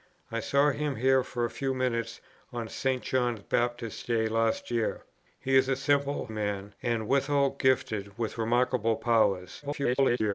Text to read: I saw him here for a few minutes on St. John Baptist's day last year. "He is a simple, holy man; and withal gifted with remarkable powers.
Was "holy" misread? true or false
true